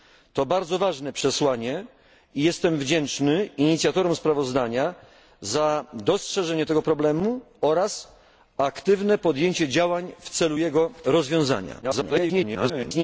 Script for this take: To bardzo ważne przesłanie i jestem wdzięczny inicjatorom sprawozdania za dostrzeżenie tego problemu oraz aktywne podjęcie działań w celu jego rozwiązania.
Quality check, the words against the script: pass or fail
fail